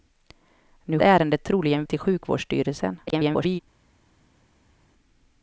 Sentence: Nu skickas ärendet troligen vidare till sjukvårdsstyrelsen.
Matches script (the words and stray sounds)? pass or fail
fail